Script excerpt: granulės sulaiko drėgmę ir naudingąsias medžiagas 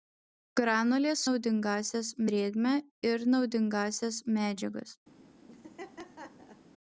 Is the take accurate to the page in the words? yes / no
no